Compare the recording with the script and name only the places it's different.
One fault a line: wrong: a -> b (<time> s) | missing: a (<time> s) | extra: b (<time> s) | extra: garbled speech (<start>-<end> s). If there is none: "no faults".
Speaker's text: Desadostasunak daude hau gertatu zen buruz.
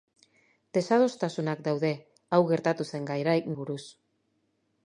no faults